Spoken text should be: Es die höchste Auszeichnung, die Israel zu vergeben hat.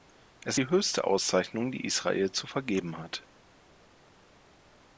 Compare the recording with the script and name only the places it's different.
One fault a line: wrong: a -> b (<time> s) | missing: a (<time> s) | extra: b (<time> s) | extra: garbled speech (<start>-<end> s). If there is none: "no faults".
no faults